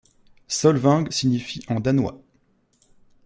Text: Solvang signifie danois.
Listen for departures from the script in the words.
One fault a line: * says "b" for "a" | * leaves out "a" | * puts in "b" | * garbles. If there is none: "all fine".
* puts in "en"